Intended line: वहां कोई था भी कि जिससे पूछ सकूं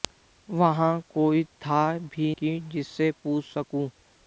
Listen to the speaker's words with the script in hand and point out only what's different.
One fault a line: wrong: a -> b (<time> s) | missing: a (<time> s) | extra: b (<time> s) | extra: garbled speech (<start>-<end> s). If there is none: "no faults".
no faults